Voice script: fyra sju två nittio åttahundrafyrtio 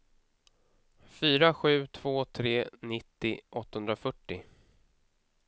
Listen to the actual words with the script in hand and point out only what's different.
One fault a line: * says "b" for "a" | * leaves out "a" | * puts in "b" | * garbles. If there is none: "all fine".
* puts in "tre"